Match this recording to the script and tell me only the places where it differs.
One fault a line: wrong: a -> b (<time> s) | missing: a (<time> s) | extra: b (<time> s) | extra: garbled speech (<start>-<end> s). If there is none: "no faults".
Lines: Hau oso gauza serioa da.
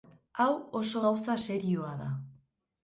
no faults